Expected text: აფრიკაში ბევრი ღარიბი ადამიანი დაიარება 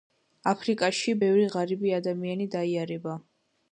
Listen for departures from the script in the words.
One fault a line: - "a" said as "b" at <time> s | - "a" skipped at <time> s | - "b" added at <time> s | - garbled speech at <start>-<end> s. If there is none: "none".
none